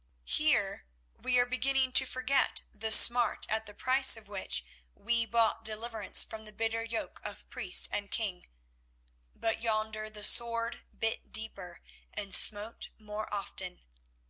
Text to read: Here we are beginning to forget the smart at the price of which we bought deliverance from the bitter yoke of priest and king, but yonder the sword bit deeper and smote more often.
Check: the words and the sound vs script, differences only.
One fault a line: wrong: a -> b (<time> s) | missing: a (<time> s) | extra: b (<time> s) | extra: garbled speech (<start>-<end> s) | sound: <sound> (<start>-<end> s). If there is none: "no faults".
no faults